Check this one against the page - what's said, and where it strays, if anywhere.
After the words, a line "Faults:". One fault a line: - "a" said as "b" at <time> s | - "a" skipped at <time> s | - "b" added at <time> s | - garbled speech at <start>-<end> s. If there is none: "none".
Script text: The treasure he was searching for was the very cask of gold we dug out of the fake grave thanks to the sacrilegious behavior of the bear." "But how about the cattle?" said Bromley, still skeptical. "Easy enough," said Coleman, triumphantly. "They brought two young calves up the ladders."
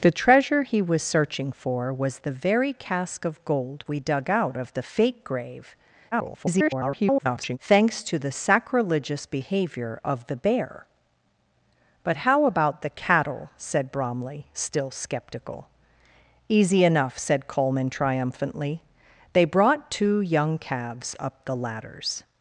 The treasure he was searching for was the very cask of gold we dug out of the fake grave [garbled] thanks to the sacrilegious behavior of the bear." "But how about the cattle?" said Bromley, still skeptical. "Easy enough," said Coleman, triumphantly. "They brought two young calves up the ladders."
Faults:
- garbled speech at 6.1-7.6 s